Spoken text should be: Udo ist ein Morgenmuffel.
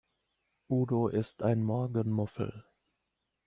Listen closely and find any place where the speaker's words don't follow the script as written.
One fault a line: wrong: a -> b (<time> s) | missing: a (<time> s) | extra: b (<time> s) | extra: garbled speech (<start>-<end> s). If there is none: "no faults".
no faults